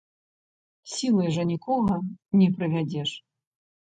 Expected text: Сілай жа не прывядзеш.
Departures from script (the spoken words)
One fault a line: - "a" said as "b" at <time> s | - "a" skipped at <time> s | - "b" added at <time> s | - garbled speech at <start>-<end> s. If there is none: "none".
- "нікога" added at 1.5 s